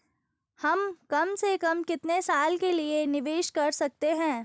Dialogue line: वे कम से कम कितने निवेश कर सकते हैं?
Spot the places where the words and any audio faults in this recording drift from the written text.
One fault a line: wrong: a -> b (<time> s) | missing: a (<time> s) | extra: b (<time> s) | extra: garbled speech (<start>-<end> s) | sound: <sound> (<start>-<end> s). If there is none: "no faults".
wrong: वे -> हम (0.6 s)
extra: साल के लिए (2.2 s)